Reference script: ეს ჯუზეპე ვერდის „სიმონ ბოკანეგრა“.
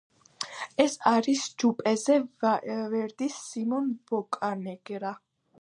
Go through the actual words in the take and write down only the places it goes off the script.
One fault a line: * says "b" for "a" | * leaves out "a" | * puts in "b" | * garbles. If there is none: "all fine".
* puts in "არის"